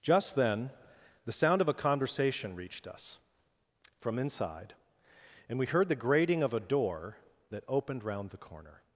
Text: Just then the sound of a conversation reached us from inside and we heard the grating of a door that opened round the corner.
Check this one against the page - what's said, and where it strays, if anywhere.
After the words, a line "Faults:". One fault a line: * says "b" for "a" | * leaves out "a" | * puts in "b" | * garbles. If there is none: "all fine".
Just then the sound of a conversation reached us from inside and we heard the grating of a door that opened round the corner.
Faults:
all fine